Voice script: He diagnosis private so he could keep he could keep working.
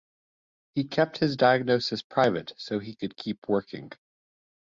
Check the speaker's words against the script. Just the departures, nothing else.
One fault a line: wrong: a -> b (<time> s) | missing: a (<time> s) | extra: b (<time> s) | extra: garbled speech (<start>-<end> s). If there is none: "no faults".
extra: kept his (0.9 s)
missing: he could keep (3.5 s)